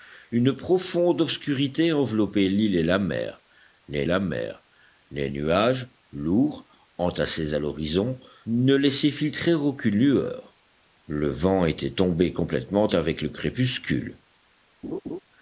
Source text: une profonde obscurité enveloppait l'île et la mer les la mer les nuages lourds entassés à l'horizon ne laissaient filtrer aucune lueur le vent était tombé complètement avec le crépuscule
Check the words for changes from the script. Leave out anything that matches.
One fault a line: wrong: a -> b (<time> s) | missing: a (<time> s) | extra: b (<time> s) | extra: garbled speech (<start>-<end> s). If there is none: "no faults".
no faults